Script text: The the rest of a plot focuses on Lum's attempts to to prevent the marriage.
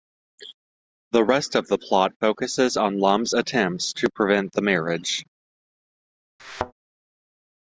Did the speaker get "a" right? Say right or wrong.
wrong